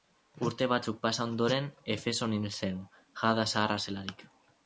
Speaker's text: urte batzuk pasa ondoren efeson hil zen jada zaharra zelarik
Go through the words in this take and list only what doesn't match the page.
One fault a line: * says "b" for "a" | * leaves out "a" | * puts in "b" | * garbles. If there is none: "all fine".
all fine